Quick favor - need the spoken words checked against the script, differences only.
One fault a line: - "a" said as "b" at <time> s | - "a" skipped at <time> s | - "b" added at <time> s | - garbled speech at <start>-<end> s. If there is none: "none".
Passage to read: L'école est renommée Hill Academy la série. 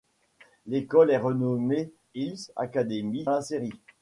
none